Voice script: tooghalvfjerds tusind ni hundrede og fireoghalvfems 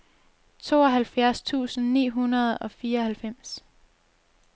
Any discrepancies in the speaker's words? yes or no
no